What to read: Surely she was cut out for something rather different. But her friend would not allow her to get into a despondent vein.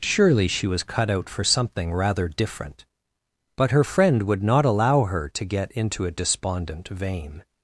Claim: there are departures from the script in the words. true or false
false